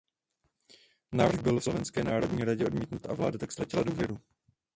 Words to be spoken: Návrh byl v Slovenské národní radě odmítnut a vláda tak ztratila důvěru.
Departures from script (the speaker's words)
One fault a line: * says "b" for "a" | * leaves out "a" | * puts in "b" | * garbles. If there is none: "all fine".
all fine